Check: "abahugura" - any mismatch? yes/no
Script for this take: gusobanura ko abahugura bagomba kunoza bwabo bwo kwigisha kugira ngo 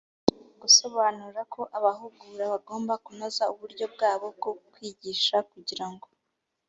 no